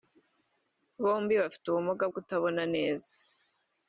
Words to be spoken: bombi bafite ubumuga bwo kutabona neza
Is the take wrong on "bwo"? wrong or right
wrong